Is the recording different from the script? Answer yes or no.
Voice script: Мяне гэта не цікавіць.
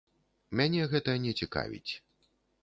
no